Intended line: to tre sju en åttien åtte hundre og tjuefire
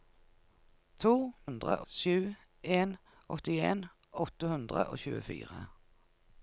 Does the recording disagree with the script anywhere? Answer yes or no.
yes